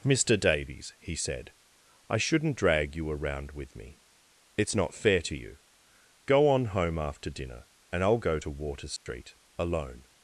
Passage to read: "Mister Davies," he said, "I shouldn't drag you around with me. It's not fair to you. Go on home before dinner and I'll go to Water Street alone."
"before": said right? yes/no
no